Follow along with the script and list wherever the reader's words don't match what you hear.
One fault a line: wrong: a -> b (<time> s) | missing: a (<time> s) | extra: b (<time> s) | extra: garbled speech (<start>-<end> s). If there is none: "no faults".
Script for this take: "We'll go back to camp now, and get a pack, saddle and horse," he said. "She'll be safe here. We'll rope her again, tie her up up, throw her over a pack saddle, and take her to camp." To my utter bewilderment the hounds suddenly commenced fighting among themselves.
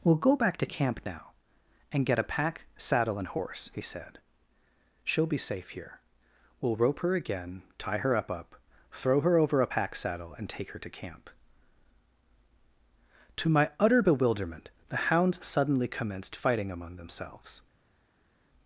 no faults